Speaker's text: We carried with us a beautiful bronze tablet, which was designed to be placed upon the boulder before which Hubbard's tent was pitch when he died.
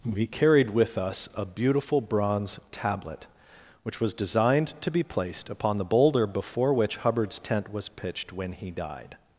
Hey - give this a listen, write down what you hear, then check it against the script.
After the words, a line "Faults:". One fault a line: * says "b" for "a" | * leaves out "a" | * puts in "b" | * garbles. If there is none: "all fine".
We carried with us a beautiful bronze tablet, which was designed to be placed upon the boulder before which Hubbard's tent was pitched when he died.
Faults:
* says "pitched" for "pitch"